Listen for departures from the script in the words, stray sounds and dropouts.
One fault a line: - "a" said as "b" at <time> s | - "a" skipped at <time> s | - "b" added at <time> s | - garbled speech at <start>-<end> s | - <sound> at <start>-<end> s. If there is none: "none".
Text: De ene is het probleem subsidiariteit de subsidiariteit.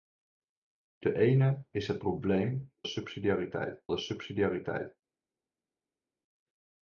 none